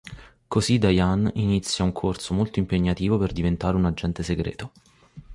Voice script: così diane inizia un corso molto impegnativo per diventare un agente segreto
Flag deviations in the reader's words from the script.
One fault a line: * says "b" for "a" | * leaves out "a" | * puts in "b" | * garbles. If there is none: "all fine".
all fine